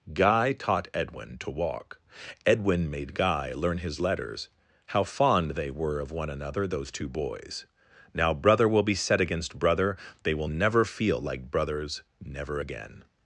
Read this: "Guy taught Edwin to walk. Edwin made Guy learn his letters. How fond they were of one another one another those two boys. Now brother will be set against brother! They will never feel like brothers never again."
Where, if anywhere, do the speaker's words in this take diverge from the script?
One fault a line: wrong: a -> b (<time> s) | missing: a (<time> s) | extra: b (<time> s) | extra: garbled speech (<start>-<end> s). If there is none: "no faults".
missing: one another (6.7 s)